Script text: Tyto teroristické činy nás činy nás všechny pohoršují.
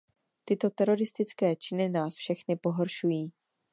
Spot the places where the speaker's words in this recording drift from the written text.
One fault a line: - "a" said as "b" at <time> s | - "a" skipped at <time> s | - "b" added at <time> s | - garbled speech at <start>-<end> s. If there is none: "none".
- "činy nás" skipped at 2.1 s